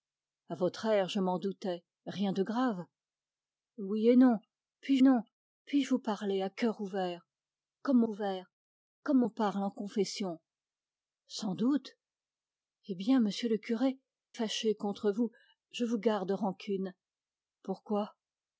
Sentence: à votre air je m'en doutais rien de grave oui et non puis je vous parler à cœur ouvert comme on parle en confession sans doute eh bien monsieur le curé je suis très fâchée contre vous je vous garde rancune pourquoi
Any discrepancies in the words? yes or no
yes